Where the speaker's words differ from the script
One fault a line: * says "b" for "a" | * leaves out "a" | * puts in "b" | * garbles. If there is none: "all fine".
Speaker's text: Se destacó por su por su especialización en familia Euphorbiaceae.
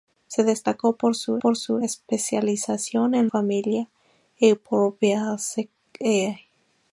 all fine